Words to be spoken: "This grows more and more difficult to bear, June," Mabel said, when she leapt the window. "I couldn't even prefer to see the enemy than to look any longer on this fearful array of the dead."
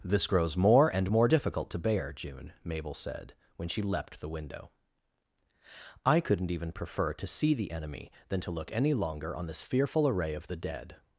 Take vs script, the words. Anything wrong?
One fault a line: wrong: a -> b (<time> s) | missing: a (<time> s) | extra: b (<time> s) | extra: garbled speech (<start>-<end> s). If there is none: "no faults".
no faults